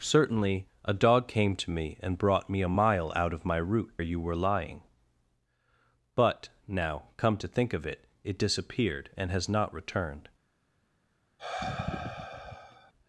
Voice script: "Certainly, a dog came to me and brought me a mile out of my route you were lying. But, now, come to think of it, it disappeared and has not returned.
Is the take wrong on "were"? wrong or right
right